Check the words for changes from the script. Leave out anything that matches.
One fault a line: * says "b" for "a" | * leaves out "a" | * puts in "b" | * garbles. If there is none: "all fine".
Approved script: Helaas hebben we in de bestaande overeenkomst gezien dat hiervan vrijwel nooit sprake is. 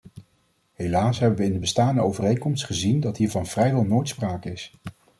all fine